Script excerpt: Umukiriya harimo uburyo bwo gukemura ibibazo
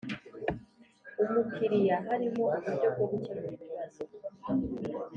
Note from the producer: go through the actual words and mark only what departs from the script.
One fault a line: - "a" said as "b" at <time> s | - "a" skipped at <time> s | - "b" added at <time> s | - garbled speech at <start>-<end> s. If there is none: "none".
none